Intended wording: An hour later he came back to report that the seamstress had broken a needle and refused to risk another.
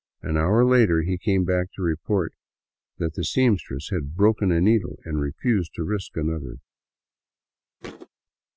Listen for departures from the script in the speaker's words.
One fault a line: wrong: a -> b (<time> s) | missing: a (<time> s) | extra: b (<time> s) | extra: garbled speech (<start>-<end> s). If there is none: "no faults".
no faults